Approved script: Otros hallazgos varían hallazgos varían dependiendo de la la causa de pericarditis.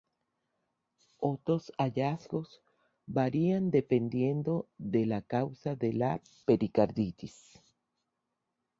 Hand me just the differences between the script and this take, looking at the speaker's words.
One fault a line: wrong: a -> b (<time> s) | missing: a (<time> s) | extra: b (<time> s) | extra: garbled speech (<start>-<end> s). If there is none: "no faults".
missing: hallazgos varían (3.7 s)
missing: la (5.2 s)
extra: la (5.9 s)